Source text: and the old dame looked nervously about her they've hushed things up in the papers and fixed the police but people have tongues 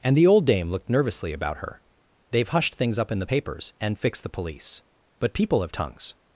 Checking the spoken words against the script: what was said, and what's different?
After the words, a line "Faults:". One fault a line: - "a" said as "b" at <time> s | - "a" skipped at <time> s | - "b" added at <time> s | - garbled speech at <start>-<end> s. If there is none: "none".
and the old dame looked nervously about her they've hushed things up in the papers and fixed the police but people have tongues
Faults:
none